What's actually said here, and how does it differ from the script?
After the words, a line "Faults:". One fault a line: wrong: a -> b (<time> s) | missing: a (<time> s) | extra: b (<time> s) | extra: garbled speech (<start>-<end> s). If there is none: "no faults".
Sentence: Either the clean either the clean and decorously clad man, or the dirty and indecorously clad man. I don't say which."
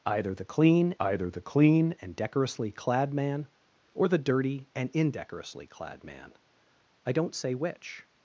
Either the clean either the clean and decorously clad man, or the dirty and indecorously clad man. I don't say which."
Faults:
no faults